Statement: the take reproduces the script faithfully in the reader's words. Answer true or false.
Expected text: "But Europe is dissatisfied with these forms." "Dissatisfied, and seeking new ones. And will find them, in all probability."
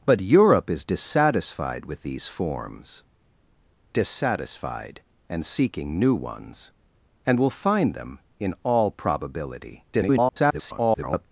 false